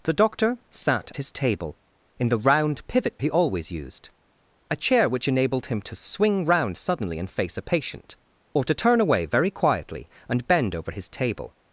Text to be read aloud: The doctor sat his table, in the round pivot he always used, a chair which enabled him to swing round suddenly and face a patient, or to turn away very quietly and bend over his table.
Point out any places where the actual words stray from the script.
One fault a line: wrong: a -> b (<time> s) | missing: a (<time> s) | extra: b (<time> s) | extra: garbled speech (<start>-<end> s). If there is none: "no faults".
no faults